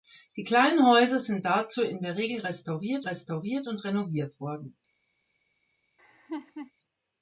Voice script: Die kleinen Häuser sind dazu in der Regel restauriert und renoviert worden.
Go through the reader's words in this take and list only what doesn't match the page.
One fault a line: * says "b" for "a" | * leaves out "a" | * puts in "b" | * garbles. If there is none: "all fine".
* puts in "restauriert"